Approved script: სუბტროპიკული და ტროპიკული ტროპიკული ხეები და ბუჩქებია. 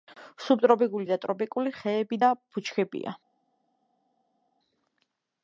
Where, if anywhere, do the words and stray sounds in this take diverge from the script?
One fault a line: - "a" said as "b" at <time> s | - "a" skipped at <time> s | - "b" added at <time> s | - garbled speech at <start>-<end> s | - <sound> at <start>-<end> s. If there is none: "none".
- "ტროპიკული" skipped at 1.7 s